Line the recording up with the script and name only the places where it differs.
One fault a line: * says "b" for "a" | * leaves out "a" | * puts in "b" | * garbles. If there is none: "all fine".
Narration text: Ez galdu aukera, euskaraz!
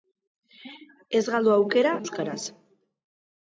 all fine